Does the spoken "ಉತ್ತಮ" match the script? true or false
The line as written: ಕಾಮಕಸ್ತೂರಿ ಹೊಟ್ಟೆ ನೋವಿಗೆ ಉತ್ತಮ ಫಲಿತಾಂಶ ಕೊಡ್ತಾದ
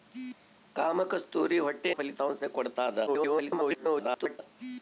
false